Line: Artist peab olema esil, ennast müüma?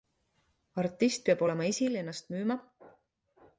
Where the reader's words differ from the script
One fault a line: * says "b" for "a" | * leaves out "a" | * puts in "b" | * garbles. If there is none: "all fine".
all fine